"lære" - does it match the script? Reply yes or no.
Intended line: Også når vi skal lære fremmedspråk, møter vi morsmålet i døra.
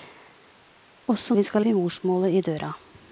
no